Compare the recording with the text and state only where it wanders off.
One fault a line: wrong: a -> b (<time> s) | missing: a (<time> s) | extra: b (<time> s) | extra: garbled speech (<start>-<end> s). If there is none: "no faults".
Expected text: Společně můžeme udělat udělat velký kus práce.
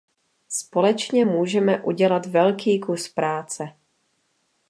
missing: udělat (2.2 s)